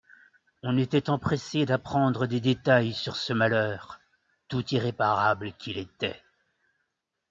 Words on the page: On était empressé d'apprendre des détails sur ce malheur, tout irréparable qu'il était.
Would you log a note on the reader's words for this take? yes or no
no